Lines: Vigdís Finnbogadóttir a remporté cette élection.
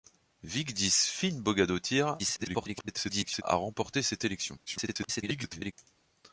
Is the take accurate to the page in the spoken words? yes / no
no